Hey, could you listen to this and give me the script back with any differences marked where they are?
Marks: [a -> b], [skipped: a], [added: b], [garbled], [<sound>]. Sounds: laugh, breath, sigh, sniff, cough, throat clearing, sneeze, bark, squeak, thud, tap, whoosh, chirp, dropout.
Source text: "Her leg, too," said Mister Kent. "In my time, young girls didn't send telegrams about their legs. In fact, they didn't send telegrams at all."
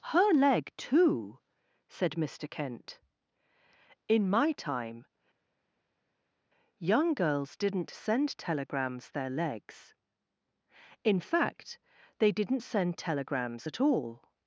"Her leg, too," said Mister Kent. "In my time, young girls didn't send telegrams [skipped: about] their legs. In fact, they didn't send telegrams at all."